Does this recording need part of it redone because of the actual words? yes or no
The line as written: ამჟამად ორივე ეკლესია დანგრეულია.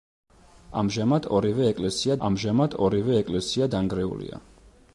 yes